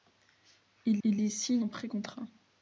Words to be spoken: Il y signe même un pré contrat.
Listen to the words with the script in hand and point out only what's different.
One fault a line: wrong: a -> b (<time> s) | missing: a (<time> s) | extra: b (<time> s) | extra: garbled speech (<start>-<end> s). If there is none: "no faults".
extra: il (1.1 s)
missing: même (1.6 s)